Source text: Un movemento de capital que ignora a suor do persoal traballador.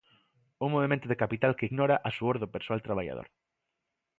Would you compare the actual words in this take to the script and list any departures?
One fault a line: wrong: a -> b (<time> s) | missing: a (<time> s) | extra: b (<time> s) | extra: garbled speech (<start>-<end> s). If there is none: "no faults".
no faults